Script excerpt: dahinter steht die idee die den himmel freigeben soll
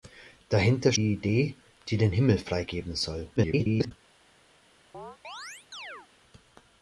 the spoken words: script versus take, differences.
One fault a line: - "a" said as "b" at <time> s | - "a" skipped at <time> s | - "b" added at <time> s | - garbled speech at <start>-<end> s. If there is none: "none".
- "steht" skipped at 0.9 s
- garbled speech at 3.4-3.9 s